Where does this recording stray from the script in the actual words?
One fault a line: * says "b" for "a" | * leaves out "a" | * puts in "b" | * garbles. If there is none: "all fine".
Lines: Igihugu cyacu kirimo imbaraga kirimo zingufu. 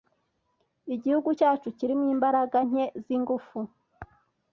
* says "nke" for "kirimo"